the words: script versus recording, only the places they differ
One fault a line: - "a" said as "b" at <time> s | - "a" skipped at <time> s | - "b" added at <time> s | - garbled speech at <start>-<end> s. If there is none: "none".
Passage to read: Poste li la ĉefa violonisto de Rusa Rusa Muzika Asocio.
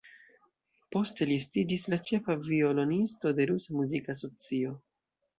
- "estiĝis" added at 1.4 s
- "Rusa" skipped at 3.8 s